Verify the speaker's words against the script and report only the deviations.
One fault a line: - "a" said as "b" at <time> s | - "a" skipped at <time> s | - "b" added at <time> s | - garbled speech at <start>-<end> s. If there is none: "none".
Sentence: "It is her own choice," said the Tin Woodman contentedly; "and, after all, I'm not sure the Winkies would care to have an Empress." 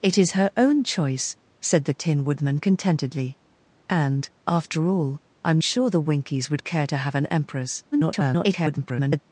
- "not" skipped at 5.6 s
- garbled speech at 7.9-9.2 s